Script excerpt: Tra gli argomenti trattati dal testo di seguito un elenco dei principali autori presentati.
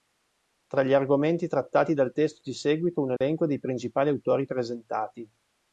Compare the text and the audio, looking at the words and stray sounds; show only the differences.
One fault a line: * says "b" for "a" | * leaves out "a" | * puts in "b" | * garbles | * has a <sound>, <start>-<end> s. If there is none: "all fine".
* has a dropout, 3.2-3.2 s